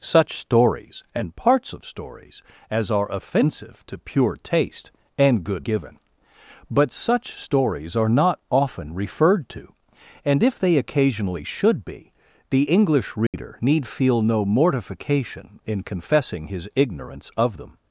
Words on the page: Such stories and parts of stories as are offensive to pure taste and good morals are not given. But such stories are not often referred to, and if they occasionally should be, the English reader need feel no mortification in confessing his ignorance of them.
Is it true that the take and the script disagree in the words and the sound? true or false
true